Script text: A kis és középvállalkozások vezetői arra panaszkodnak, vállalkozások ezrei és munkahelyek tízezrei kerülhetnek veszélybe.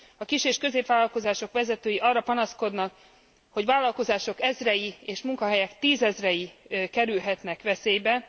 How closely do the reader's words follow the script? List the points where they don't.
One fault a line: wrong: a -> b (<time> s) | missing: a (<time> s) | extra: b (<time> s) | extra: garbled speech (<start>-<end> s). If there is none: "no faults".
extra: hogy (3.5 s)